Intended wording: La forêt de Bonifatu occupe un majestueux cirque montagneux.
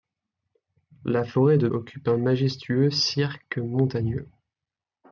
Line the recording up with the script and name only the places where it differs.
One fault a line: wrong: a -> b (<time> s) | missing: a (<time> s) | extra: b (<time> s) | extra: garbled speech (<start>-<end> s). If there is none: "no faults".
missing: Bonifatu (1.7 s)